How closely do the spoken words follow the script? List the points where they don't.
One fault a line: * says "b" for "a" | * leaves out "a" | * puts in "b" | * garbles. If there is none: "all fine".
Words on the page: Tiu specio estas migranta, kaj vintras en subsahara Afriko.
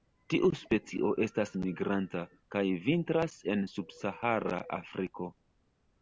all fine